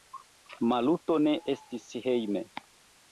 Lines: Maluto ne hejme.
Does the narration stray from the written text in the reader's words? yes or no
yes